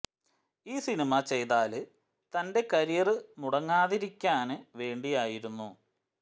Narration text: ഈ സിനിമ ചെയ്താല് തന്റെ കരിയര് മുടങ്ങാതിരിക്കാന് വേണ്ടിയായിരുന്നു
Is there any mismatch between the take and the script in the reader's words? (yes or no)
no